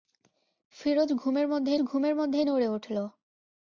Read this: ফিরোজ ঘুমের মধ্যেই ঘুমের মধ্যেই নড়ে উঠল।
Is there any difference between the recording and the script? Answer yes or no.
no